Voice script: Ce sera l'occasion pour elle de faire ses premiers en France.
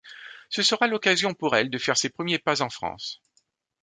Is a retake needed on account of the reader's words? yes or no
yes